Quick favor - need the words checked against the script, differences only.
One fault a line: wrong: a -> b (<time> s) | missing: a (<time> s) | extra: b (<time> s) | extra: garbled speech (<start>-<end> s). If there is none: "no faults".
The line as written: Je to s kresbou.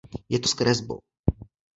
no faults